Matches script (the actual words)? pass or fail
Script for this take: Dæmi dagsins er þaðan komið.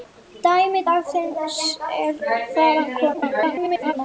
fail